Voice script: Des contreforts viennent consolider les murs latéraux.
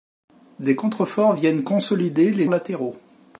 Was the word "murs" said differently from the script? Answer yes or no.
yes